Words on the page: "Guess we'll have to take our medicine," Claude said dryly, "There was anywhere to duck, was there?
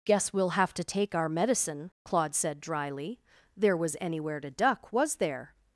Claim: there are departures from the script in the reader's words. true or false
false